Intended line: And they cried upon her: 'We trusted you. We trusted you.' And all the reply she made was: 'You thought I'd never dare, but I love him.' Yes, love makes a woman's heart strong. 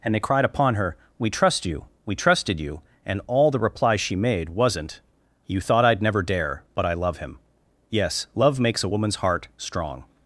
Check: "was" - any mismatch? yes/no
yes